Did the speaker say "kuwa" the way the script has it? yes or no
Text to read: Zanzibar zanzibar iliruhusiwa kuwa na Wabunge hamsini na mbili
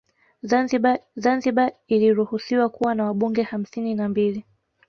yes